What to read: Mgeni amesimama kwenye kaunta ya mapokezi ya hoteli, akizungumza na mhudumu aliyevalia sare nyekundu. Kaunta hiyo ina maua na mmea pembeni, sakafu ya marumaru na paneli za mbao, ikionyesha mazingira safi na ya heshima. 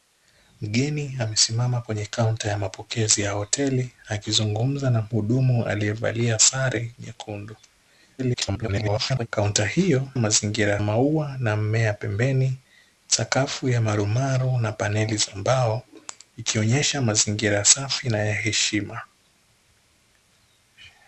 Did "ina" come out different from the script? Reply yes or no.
yes